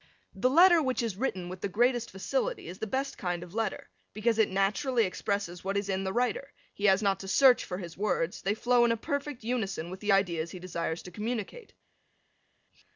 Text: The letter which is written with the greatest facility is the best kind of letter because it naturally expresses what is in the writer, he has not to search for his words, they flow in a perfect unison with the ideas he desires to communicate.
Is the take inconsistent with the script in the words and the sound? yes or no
no